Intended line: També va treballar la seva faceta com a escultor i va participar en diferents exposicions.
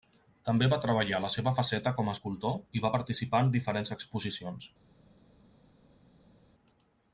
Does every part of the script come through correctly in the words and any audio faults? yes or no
yes